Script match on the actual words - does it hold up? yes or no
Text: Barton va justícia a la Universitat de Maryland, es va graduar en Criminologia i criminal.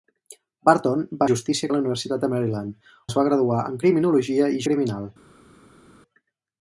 yes